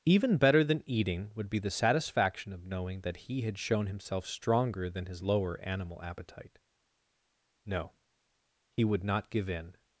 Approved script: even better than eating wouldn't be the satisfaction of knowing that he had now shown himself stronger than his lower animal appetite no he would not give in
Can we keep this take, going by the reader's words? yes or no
no